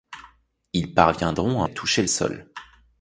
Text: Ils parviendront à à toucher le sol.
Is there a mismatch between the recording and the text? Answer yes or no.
no